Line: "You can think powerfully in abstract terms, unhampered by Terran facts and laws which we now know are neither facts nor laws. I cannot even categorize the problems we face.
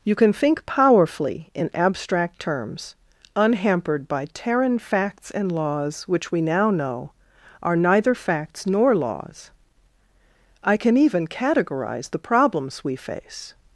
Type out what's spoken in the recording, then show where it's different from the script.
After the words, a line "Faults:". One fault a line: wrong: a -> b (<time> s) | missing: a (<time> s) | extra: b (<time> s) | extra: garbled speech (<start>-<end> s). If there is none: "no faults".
"You can think powerfully in abstract terms, unhampered by Terran facts and laws which we now know are neither facts nor laws. I can even categorize the problems we face.
Faults:
wrong: cannot -> can (10.8 s)